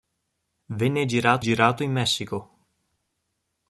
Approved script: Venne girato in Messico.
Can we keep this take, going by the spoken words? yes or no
no